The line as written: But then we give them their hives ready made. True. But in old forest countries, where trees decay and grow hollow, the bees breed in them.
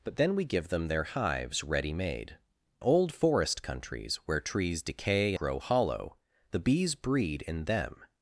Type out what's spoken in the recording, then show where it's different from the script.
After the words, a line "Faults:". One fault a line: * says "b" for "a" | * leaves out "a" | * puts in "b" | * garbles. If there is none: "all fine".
But then we give them their hives ready made. Old forest countries, where trees decay grow hollow, the bees breed in them.
Faults:
* leaves out "True But in"
* leaves out "and"